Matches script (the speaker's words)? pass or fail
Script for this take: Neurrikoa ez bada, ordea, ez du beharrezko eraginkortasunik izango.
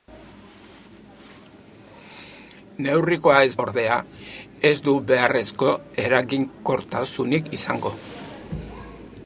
fail